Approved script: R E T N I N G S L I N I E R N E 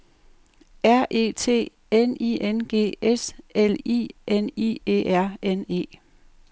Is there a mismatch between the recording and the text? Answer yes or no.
no